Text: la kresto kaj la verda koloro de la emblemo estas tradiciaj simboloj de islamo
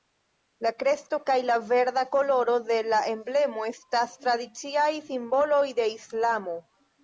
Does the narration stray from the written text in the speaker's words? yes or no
no